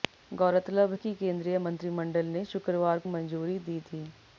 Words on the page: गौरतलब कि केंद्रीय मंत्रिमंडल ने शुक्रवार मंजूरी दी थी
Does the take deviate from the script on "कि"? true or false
false